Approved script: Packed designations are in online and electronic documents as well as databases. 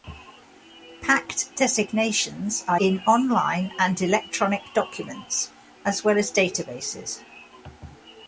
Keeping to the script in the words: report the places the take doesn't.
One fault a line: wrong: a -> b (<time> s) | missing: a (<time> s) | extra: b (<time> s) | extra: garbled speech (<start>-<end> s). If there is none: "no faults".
no faults